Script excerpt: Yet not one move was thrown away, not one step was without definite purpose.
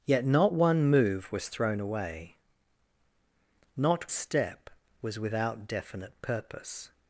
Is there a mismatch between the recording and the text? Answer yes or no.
yes